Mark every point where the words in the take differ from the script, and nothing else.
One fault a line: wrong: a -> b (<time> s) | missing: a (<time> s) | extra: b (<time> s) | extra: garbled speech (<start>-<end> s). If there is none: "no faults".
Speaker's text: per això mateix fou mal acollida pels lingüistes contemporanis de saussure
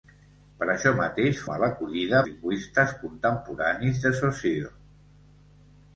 missing: fou (1.4 s)
missing: pels (2.2 s)